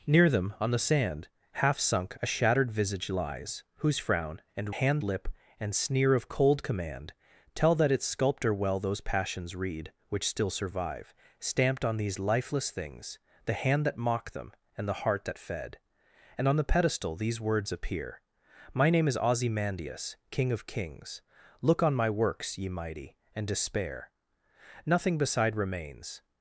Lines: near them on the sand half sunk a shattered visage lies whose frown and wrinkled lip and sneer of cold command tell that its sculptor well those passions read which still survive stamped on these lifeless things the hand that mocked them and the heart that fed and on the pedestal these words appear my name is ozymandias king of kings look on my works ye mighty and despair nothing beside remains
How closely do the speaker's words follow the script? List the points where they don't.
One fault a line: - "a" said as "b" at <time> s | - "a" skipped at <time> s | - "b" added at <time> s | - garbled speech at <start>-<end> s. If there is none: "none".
- "wrinkled" said as "hand" at 4.7 s